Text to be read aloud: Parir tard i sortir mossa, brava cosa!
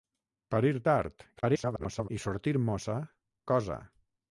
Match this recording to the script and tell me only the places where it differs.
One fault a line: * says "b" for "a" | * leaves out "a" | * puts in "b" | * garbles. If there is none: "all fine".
* garbles
* leaves out "brava"